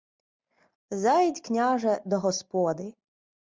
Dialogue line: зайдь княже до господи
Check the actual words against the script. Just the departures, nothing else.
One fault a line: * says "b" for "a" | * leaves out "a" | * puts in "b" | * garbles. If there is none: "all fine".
all fine